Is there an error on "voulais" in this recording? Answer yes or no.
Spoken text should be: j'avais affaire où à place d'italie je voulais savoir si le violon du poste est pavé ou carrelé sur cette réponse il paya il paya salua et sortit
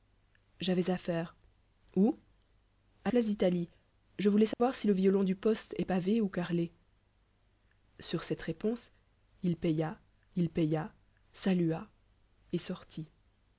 no